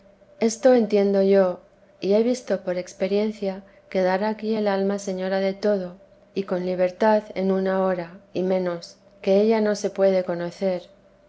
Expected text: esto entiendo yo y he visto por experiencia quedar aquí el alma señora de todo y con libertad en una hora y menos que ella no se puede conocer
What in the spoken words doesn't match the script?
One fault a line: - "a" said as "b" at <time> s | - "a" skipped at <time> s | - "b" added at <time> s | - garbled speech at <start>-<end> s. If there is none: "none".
none